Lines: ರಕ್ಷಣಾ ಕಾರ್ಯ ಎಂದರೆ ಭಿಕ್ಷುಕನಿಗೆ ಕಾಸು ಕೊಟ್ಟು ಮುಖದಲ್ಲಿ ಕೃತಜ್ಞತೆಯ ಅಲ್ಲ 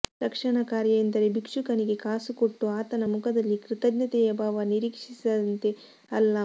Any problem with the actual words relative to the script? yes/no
yes